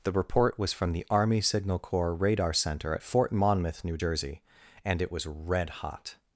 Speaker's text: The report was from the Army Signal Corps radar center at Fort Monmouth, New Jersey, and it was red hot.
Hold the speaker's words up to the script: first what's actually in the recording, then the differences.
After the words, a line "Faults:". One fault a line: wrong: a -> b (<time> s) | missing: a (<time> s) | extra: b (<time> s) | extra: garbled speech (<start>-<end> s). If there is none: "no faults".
The report was from the Army Signal Corps radar center at Fort Monmouth, New Jersey, and it was red hot.
Faults:
no faults